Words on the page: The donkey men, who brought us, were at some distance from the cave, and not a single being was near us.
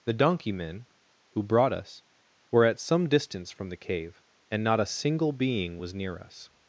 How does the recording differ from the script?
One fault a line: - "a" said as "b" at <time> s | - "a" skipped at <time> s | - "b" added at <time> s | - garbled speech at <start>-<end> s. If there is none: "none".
none